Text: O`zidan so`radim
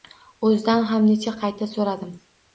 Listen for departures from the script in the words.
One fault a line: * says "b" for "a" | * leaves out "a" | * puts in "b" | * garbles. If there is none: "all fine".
* puts in "ham necha qayta"